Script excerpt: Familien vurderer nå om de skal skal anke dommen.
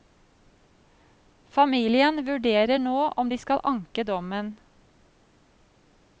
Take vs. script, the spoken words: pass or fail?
fail